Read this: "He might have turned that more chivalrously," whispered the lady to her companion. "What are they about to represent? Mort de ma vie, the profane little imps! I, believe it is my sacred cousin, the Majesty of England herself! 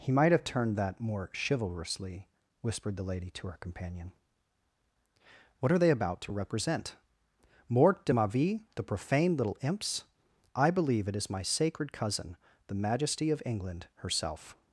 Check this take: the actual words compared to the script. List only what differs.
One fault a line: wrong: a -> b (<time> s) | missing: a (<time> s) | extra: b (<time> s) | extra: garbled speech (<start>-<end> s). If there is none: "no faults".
no faults